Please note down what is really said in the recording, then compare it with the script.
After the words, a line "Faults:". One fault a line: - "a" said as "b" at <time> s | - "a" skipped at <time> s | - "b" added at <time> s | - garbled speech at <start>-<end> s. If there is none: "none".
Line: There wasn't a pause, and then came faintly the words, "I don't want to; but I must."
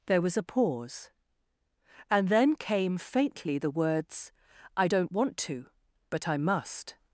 There was a pause, and then came faintly the words, "I don't want to; but I must."
Faults:
- "wasn't" said as "was" at 0.2 s